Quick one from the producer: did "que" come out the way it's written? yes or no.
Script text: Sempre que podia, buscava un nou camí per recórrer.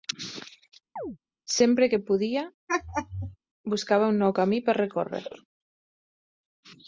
yes